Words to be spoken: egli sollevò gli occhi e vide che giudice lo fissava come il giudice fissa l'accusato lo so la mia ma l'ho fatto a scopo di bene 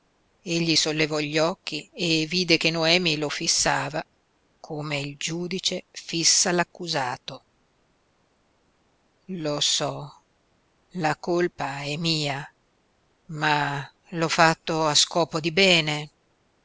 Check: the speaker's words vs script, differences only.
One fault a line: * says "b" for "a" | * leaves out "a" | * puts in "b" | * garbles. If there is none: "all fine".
* says "noemi" for "giudice"
* puts in "colpa è"